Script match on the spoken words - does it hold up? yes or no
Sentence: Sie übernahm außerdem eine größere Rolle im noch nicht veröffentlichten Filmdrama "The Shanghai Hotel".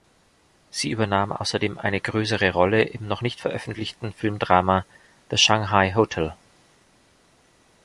yes